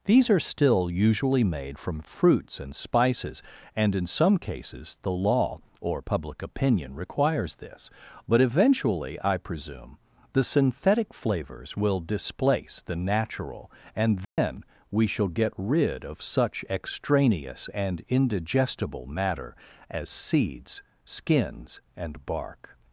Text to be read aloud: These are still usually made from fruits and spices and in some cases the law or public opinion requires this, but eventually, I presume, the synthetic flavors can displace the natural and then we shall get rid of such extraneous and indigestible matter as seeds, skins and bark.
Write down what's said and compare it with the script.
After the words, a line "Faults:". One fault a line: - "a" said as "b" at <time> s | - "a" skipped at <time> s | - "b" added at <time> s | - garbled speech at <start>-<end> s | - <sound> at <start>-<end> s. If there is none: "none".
These are still usually made from fruits and spices and in some cases the law or public opinion requires this, but eventually, I presume, the synthetic flavors will displace the natural and then we shall get rid of such extraneous and indigestible matter as seeds, skins and bark.
Faults:
- "can" said as "will" at 11.7 s
- dropout at 14.2-14.4 s